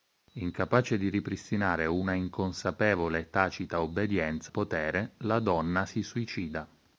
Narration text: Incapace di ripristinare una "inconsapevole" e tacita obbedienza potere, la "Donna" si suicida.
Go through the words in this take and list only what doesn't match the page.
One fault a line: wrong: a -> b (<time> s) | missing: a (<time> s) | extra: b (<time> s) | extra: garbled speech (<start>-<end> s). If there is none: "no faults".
no faults